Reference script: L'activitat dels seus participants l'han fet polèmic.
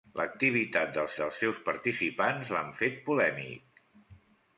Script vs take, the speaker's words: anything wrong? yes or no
yes